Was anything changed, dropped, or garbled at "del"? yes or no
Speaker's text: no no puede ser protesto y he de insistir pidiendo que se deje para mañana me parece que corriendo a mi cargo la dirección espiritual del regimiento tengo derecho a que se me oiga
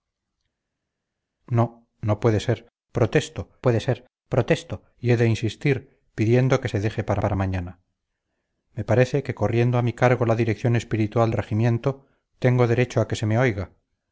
yes